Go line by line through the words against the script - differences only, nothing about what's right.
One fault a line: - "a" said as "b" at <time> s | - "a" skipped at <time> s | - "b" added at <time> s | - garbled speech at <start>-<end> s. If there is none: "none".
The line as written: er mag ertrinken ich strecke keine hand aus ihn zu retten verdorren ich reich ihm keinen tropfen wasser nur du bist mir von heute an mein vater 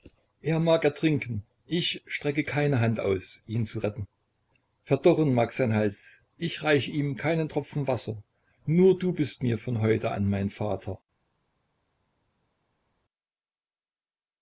- "mag sein hals" added at 5.3 s